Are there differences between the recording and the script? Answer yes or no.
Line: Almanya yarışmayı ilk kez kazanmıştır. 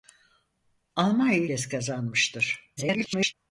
yes